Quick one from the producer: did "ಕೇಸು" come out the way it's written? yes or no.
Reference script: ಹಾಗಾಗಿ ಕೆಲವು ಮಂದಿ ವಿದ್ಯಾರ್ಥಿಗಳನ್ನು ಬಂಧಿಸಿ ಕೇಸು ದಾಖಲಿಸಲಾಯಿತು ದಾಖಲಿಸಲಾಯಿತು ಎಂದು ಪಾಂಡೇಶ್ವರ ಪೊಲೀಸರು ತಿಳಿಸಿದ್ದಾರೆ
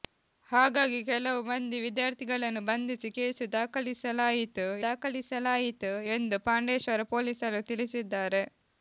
yes